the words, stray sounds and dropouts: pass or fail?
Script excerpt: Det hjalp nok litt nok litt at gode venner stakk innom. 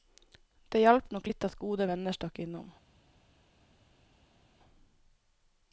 fail